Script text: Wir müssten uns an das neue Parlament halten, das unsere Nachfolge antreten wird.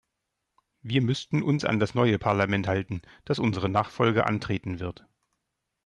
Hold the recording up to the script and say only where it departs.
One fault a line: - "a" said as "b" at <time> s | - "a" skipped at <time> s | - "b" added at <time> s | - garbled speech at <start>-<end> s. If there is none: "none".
none